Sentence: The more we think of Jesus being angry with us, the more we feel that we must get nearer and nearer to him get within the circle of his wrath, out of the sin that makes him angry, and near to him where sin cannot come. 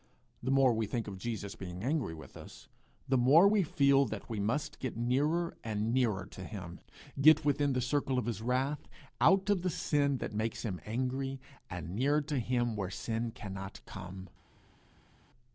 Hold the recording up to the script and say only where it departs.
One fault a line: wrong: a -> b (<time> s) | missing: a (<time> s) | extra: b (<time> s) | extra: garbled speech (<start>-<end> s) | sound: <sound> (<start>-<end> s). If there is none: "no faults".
no faults